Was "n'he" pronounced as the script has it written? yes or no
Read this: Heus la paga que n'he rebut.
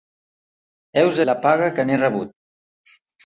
yes